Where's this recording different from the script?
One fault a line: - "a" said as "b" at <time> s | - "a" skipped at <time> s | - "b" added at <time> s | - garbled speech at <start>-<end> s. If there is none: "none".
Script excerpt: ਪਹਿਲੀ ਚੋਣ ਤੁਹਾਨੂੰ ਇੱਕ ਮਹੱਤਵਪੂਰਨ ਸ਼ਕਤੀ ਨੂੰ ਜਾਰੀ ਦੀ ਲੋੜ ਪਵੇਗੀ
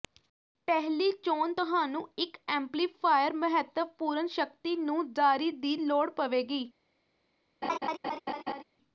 - "ਐਮਪਲੀਫਾਇਰ" added at 2.5 s